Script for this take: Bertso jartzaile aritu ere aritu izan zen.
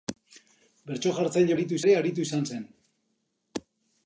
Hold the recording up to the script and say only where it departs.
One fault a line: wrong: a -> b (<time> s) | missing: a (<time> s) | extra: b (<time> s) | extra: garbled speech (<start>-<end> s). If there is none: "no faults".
no faults